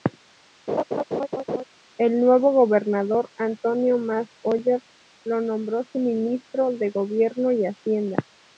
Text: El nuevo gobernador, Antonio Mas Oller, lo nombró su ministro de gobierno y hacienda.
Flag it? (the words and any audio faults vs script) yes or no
yes